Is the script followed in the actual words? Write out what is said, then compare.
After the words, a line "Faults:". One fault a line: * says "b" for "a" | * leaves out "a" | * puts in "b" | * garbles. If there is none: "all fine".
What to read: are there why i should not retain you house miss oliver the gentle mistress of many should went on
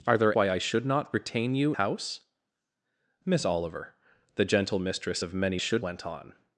are there why i should not retain you house miss oliver the gentle mistress of many should went on
Faults:
all fine